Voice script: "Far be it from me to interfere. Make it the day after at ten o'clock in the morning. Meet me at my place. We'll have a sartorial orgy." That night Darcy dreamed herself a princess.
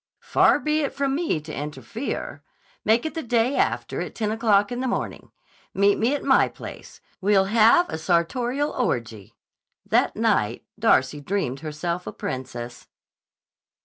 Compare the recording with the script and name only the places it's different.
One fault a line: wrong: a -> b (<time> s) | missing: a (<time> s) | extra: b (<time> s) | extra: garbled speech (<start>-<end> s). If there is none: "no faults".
no faults